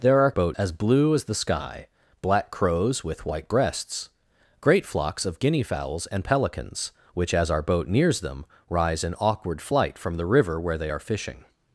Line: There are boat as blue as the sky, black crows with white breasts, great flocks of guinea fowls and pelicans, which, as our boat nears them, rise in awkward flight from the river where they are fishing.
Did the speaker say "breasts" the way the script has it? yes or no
yes